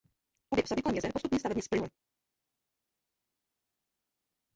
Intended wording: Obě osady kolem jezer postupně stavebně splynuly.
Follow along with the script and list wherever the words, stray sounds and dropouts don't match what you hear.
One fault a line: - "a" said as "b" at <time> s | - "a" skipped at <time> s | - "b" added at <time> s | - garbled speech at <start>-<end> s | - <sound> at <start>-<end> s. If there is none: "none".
none